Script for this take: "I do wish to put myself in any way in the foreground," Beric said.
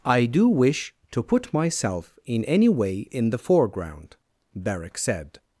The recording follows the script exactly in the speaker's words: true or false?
true